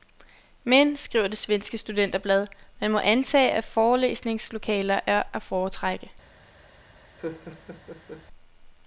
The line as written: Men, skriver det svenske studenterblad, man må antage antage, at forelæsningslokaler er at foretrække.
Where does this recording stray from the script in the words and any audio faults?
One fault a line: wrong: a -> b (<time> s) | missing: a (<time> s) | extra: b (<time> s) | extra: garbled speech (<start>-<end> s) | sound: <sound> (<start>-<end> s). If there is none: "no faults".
missing: antage (3.5 s)
sound: laugh (7.2-8.3 s)